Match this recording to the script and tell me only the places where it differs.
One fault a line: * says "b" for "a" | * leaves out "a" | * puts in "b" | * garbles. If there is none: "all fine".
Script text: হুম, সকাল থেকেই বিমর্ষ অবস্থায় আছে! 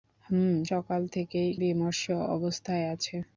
all fine